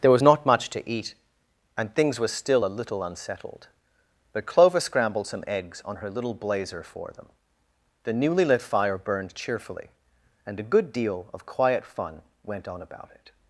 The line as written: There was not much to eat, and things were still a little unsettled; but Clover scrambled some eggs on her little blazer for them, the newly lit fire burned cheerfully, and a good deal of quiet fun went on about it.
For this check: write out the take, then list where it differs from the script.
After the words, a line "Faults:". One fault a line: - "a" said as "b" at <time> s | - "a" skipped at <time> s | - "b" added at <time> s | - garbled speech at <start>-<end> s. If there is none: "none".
There was not much to eat, and things were still a little unsettled; but Clover scrambled some eggs on her little blazer for them, the newly lit fire burned cheerfully, and a good deal of quiet fun went on about it.
Faults:
none